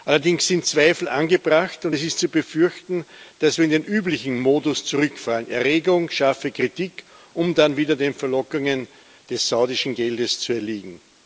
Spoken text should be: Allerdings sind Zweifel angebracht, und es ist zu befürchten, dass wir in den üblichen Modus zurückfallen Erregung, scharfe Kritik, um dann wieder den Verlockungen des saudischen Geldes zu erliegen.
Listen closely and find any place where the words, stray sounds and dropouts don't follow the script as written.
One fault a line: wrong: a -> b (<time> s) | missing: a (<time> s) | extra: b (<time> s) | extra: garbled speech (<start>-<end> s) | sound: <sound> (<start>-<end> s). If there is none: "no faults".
no faults